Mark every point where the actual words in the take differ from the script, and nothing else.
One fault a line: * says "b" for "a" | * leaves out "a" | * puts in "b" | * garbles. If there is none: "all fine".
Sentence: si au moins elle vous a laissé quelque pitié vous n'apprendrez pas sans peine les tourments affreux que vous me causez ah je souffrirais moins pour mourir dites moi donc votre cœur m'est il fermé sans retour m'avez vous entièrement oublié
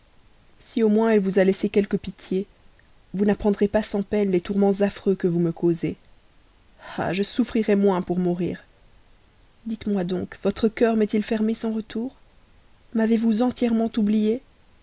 all fine